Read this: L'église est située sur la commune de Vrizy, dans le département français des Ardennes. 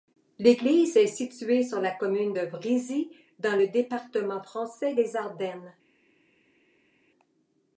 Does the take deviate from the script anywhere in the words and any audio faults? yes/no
no